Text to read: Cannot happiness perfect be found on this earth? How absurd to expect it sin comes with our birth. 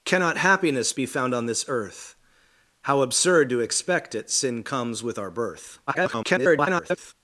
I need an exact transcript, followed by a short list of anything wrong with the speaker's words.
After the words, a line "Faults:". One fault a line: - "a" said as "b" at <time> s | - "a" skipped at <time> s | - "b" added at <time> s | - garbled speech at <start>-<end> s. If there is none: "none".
Cannot happiness be found on this earth? How absurd to expect it sin comes with our birth. [garbled]
Faults:
- "perfect" skipped at 0.9 s
- garbled speech at 5.9-7.1 s